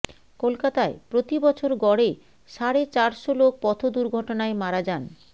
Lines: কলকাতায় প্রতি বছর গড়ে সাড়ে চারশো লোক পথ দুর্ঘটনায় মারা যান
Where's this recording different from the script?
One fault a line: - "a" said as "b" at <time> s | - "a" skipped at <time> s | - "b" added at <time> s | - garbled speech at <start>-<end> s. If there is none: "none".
none